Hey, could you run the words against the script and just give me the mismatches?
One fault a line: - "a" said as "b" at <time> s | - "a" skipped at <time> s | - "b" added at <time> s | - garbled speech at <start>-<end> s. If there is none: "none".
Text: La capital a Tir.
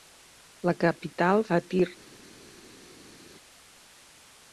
none